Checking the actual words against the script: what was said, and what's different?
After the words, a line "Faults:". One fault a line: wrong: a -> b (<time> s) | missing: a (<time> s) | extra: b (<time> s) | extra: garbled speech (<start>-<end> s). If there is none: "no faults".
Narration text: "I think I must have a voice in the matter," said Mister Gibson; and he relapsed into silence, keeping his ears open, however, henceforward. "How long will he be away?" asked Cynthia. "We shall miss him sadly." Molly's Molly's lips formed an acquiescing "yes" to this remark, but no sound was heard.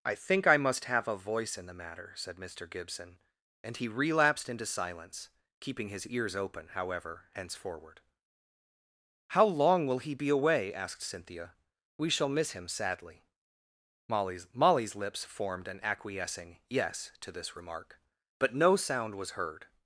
"I think I must have a voice in the matter," said Mister Gibson; and he relapsed into silence, keeping his ears open, however, henceforward. "How long will he be away?" asked Cynthia. "We shall miss him sadly." Molly's Molly's lips formed an acquiescing "yes" to this remark, but no sound was heard.
Faults:
no faults